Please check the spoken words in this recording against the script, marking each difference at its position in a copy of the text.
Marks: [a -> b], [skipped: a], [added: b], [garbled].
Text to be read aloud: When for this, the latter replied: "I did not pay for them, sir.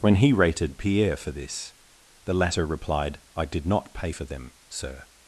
When [added: he rated Pierre] for this, the latter replied: "I did not pay for them, sir.